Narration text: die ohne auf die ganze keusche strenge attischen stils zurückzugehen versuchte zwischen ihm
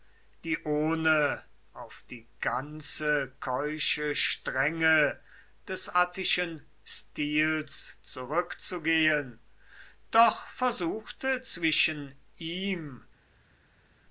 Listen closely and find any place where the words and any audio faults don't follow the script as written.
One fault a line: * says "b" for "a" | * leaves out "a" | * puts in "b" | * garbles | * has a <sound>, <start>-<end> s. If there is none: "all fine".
* puts in "des"
* puts in "doch"